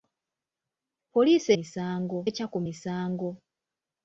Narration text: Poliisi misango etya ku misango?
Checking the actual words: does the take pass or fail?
pass